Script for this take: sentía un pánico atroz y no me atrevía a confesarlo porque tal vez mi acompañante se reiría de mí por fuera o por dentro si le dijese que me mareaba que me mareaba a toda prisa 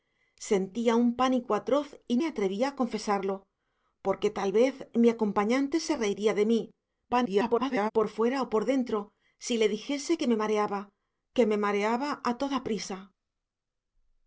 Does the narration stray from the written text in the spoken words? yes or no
yes